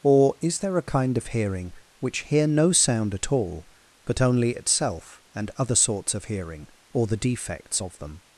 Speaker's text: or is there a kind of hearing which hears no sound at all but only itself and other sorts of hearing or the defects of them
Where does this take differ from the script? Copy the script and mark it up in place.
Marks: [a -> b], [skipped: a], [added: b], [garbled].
or is there a kind of hearing which [hears -> hear] no sound at all but only itself and other sorts of hearing or the defects of them